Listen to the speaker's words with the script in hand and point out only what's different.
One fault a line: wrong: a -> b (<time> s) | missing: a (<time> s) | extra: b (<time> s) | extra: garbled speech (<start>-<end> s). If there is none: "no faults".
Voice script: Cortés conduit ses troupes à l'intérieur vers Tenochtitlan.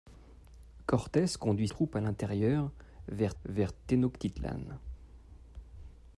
missing: ses (1.7 s)
extra: vers (3.4 s)